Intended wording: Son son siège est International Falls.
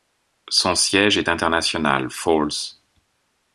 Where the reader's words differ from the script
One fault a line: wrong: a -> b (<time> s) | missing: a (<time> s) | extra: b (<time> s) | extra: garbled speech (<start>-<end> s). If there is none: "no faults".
missing: son (0.7 s)